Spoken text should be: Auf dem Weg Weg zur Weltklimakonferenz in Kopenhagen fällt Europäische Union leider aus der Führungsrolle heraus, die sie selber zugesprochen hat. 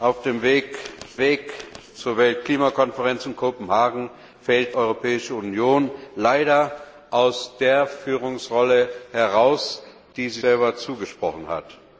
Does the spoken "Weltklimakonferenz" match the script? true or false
true